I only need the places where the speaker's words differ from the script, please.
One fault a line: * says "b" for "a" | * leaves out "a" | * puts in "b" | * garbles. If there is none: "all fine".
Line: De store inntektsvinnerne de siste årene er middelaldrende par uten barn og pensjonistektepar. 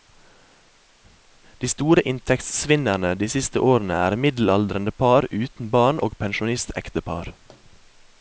all fine